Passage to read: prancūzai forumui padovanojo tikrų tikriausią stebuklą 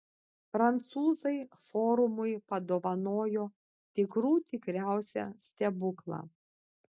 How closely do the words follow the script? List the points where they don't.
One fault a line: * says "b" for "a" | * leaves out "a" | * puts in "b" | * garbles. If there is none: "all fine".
all fine